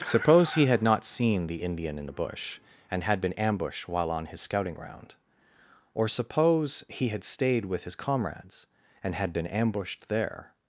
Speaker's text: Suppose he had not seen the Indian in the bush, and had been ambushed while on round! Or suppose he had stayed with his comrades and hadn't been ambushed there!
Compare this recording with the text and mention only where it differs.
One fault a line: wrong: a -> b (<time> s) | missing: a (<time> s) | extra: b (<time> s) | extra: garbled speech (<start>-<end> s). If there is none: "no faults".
extra: his scouting (4.3 s)
wrong: hadn't -> had (9.2 s)